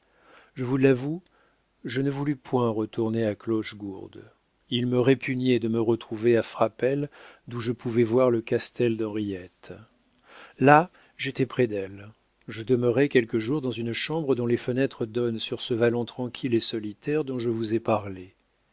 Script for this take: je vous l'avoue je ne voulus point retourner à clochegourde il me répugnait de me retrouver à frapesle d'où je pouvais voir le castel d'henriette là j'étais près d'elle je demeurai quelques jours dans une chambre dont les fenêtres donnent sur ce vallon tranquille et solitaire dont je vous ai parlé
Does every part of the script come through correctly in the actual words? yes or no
yes